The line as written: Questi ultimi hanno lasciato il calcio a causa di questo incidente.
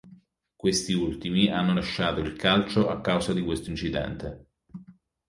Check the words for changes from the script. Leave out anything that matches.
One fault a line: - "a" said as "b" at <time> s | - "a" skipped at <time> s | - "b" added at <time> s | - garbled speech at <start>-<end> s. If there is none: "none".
none